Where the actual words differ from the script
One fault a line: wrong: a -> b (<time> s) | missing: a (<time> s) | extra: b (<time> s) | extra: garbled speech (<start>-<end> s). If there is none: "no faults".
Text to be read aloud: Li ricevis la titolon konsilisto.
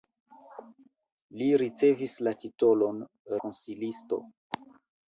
no faults